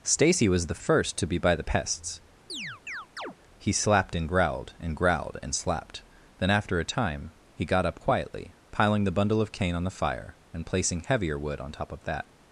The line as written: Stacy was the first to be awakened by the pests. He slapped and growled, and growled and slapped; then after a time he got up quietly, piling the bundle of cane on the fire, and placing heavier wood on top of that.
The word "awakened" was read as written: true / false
false